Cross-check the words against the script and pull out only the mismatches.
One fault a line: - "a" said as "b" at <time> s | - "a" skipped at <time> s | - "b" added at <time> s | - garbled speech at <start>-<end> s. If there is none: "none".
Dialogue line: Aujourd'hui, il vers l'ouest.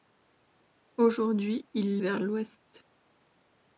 none